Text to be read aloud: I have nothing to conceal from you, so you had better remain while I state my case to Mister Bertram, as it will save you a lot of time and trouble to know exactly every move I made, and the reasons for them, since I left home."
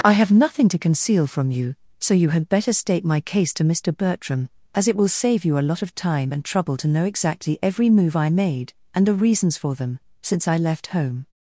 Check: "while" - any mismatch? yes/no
yes